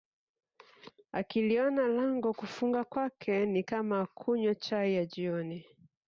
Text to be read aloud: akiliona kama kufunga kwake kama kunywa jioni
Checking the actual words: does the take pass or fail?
fail